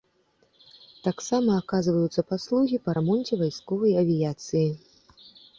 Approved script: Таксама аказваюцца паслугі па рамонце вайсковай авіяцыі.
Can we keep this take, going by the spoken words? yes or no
yes